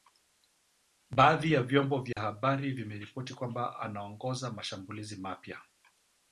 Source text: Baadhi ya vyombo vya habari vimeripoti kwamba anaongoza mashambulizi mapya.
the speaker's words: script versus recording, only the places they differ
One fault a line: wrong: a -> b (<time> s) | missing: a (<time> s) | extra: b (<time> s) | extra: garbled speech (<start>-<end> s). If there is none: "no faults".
no faults